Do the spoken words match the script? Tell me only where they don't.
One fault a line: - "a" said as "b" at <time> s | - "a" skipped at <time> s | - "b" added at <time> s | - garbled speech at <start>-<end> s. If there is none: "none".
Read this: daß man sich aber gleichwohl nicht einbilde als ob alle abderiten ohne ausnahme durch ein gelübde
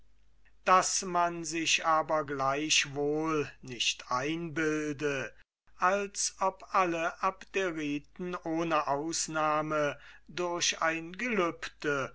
none